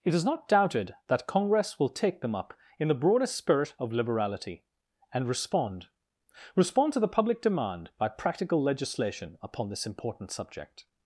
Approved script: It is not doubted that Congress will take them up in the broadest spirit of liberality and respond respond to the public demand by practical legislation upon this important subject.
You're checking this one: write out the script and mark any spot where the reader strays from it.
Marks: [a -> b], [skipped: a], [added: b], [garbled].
It is not doubted that Congress will take them up in the broadest spirit of liberality and respond respond to the public demand by practical legislation upon this important subject.